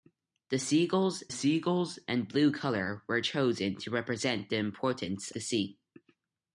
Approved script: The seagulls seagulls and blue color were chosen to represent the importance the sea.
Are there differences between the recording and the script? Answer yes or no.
no